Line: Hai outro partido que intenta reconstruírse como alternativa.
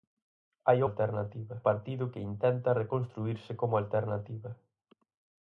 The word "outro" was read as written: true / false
false